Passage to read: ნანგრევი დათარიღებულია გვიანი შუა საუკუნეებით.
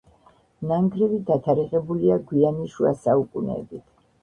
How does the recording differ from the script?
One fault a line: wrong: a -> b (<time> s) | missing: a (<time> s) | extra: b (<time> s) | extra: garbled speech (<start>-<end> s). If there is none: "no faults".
no faults